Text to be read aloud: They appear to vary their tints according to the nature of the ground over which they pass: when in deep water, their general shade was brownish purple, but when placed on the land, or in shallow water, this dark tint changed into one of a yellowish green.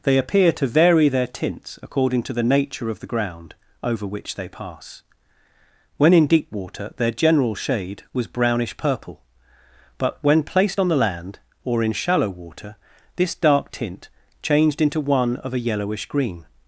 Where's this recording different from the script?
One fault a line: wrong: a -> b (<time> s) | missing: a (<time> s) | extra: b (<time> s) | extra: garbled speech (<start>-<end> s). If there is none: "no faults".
no faults